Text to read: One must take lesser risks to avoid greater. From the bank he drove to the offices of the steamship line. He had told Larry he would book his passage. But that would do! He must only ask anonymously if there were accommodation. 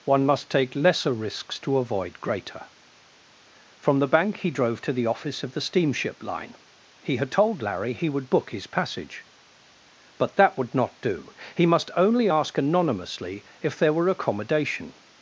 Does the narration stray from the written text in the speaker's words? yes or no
yes